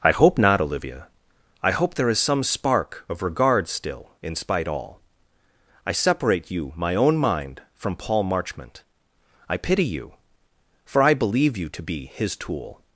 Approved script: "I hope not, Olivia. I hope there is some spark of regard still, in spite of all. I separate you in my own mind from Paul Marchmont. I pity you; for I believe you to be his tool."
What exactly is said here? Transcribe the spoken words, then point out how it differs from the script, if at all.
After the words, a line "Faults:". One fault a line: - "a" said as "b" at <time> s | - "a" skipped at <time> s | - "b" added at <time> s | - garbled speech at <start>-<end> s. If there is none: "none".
"I hope not, Olivia. I hope there is some spark of regard still, in spite all. I separate you my own mind from Paul Marchmont. I pity you; for I believe you to be his tool."
Faults:
- "of" skipped at 4.7 s
- "in" skipped at 6.7 s